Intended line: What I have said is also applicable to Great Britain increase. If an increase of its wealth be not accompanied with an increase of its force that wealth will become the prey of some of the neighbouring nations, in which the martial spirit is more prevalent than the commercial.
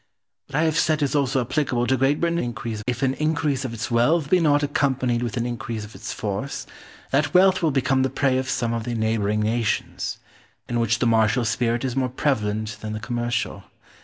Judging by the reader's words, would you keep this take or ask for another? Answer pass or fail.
pass